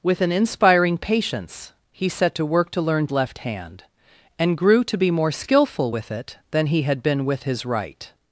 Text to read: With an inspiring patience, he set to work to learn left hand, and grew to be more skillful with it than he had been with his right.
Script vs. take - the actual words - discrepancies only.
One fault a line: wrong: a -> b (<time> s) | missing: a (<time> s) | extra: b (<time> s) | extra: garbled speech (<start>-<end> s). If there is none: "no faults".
no faults